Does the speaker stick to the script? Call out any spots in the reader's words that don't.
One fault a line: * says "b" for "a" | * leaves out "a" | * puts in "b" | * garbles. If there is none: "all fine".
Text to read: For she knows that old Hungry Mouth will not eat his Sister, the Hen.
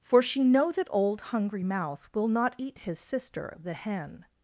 * says "know" for "knows"